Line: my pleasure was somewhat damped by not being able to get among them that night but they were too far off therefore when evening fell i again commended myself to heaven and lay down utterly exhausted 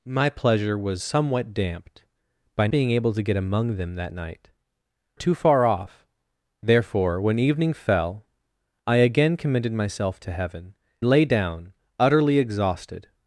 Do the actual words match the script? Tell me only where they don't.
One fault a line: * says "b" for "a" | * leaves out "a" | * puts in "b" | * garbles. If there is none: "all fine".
* leaves out "not"
* leaves out "but they were"
* leaves out "and"